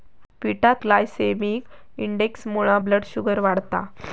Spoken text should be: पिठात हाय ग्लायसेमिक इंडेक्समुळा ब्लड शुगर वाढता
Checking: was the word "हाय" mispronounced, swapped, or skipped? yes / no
yes